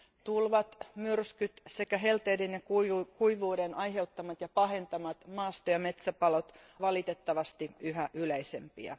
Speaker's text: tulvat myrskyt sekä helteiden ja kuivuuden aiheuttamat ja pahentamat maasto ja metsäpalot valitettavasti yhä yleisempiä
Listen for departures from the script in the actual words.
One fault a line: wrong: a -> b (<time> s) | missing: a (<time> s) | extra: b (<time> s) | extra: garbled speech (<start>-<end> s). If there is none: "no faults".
no faults